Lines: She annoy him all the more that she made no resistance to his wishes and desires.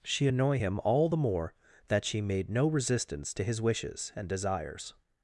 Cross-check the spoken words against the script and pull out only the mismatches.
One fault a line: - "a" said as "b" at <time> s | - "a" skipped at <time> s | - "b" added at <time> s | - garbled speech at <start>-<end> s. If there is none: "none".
none